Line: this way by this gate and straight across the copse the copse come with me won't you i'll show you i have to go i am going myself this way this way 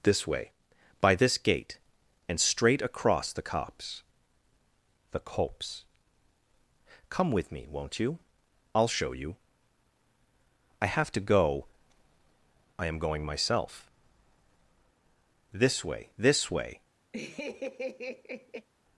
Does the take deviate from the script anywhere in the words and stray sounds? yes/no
yes